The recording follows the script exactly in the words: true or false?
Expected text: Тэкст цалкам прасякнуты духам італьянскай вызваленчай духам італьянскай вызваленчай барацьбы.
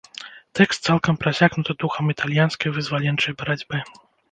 false